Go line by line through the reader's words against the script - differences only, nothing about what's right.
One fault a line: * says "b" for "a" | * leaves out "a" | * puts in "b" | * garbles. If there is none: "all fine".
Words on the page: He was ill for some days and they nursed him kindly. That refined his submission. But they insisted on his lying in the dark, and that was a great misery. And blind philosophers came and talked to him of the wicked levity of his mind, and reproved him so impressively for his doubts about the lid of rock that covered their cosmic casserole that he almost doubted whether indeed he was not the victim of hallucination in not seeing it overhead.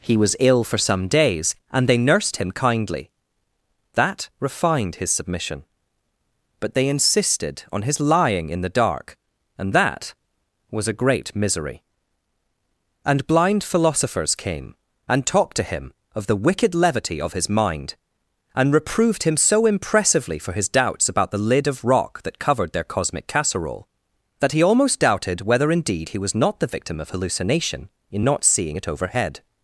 all fine